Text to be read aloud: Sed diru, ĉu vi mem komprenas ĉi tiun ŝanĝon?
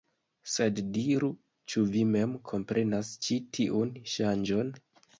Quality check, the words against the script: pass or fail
pass